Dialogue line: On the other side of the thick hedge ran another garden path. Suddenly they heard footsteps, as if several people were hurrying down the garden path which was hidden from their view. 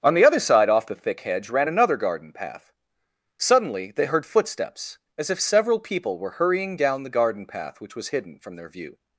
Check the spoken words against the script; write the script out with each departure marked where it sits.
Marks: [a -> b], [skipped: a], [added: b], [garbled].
On the other side [of -> off] the thick hedge ran another garden path. Suddenly they heard footsteps, as if several people were hurrying down the garden path which was hidden from their view.